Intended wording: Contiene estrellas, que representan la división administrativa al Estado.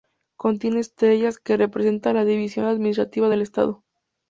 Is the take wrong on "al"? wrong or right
wrong